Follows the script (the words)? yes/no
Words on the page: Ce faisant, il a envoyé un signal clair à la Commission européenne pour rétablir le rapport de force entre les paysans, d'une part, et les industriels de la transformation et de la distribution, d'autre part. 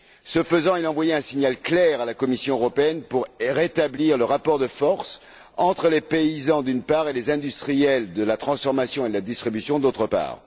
yes